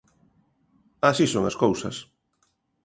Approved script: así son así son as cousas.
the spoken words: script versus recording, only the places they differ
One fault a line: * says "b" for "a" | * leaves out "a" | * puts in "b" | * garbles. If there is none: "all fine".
* leaves out "así son"